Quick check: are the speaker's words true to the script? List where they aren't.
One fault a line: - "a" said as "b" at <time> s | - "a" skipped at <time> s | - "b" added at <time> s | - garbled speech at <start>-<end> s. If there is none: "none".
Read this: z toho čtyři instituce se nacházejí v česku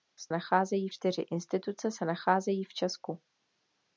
- "toho" said as "nacházejí" at 0.3 s